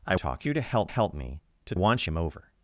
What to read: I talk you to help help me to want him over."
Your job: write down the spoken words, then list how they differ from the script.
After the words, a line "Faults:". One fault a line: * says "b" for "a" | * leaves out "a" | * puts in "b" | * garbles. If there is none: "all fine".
I talk you to help help me to want him over."
Faults:
all fine